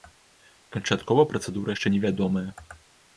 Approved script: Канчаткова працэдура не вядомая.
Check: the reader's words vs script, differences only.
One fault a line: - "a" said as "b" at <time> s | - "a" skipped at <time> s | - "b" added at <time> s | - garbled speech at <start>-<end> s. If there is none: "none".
- "яшчэ" added at 1.7 s